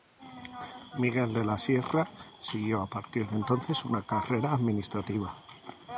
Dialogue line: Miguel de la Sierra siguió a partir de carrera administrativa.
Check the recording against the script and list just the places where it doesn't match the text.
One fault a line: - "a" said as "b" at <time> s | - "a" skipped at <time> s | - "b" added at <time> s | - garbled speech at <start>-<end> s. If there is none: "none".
- "entonces una" added at 3.3 s